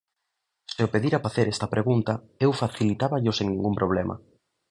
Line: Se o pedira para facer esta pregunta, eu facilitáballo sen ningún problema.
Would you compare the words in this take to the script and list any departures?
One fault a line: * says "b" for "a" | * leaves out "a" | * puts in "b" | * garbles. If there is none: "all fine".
* leaves out "para"